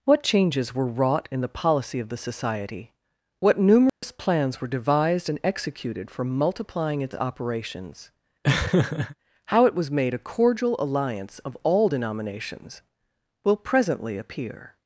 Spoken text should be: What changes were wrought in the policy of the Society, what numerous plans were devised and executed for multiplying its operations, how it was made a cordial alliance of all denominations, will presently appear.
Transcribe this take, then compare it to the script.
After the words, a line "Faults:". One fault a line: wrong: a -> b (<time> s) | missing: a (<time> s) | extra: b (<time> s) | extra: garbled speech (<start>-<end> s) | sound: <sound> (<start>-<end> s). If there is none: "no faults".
What changes were wrought in the policy of the Society, what numerous plans were devised and executed for multiplying its operations, how it was made a cordial alliance of all denominations, will presently appear.
Faults:
sound: dropout (3.9-4.0 s)
sound: laugh (8.4-9.2 s)